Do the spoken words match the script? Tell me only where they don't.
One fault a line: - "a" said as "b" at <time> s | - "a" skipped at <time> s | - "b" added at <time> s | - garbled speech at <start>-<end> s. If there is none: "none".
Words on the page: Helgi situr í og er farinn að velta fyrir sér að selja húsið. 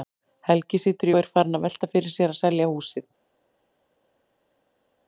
none